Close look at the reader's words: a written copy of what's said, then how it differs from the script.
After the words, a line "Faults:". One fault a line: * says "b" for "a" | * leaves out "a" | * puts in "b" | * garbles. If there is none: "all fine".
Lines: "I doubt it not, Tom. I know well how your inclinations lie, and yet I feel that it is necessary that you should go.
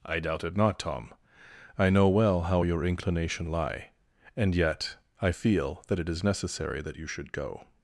"I doubt it not, Tom. I know well how your inclination lie, and yet I feel that it is necessary that you should go.
Faults:
* says "inclination" for "inclinations"